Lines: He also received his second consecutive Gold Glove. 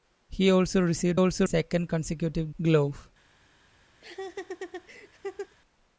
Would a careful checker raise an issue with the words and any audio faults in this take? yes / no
yes